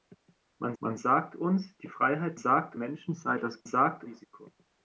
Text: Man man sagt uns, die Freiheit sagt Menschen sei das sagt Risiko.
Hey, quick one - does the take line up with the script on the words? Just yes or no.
yes